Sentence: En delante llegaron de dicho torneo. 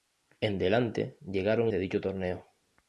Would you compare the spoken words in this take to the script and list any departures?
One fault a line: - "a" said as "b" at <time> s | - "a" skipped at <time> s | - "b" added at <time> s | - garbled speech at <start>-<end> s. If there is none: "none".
none